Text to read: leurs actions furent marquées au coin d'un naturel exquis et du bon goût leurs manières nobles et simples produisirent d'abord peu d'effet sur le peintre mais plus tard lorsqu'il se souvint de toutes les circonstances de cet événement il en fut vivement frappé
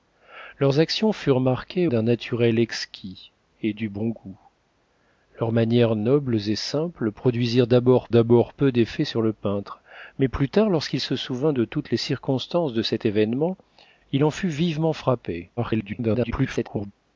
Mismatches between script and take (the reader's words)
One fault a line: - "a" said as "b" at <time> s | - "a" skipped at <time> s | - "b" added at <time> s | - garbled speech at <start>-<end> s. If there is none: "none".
- "au coin" skipped at 1.9 s
- "d'abord" added at 8.1 s
- garbled speech at 15.6-16.9 s